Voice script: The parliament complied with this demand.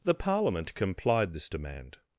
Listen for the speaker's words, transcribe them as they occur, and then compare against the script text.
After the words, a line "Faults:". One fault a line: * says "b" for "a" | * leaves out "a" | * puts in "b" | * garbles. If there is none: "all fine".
The parliament complied this demand.
Faults:
* leaves out "with"